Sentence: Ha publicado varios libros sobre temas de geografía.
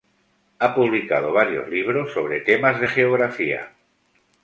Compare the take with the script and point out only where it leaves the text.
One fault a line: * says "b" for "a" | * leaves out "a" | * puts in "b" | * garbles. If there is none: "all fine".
all fine